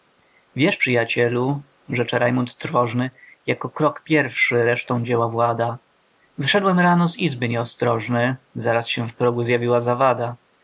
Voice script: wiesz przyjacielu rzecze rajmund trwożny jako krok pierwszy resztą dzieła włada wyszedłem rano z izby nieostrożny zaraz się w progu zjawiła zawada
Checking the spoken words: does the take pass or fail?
pass